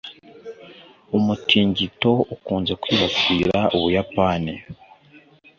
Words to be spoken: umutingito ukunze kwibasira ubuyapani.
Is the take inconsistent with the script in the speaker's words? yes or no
no